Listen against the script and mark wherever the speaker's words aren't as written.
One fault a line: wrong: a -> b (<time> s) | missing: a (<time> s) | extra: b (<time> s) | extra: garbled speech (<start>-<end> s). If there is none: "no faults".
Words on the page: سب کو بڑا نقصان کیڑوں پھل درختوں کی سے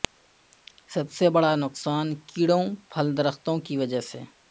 wrong: کو -> سے (1.1 s)
extra: وجہ (3.8 s)